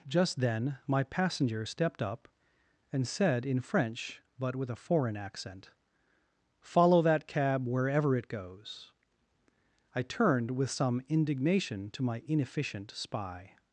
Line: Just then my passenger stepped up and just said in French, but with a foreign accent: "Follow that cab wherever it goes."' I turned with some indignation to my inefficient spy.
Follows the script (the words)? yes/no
no